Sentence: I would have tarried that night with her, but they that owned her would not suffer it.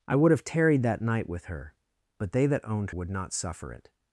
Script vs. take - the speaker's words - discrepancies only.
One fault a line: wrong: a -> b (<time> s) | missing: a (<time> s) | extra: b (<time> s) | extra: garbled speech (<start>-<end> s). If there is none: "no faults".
missing: her (2.9 s)